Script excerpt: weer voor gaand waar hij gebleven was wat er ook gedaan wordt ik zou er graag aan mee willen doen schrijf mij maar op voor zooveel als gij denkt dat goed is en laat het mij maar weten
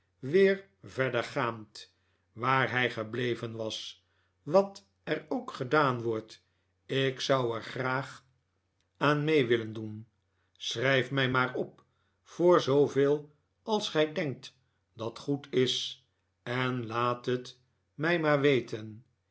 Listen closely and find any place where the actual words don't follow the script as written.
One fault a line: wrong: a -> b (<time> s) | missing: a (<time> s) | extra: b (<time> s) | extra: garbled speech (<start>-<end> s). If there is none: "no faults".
wrong: voor -> verder (0.8 s)